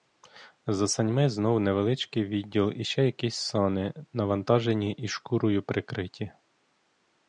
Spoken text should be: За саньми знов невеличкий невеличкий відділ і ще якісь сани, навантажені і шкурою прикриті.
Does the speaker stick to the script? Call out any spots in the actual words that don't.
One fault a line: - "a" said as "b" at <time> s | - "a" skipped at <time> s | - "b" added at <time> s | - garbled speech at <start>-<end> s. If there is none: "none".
- "невеличкий" skipped at 2.2 s